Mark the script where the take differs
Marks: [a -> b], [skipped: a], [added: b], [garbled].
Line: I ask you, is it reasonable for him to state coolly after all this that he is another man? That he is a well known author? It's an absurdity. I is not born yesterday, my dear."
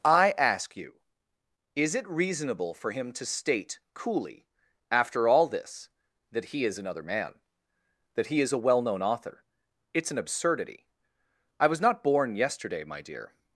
I ask you, is it reasonable for him to state coolly after all this that he is another man? That he is a well known author? It's an absurdity. I [is -> was] not born yesterday, my dear."